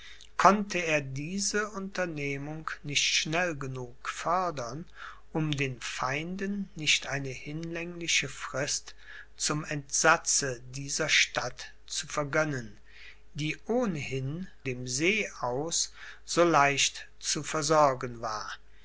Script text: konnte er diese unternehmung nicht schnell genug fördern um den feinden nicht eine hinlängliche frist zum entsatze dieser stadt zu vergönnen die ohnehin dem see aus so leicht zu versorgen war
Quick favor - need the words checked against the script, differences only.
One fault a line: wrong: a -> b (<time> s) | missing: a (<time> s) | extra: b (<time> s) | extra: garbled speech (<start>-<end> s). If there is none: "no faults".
no faults